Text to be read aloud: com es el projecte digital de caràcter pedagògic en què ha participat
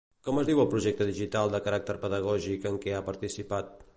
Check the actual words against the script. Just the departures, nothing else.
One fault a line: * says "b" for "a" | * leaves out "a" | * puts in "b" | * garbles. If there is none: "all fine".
* puts in "diu"